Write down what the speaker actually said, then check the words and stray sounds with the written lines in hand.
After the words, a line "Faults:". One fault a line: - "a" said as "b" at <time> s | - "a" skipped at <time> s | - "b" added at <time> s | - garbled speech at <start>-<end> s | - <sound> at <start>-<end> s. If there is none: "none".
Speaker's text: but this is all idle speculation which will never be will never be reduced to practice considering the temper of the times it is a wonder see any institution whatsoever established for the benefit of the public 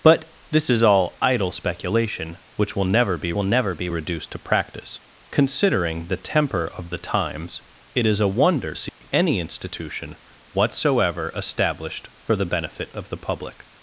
but this is all idle speculation which will never be will never be reduced to practice considering the temper of the times it is a wonder see any institution whatsoever established for the benefit of the public
Faults:
- dropout at 8.9-9.0 s